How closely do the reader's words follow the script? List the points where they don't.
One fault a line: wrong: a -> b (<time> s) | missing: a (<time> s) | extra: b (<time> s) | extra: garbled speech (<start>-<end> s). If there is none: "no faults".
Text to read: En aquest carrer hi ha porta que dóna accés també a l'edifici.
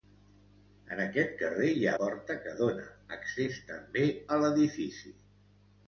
no faults